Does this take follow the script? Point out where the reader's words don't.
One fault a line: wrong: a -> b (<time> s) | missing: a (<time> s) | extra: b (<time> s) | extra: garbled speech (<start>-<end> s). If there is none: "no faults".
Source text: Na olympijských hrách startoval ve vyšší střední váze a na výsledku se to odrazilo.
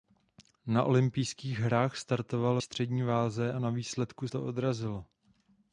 missing: ve vyšší (2.6 s)
missing: se (4.3 s)